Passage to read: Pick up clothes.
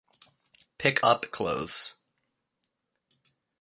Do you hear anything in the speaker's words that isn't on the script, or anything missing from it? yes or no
no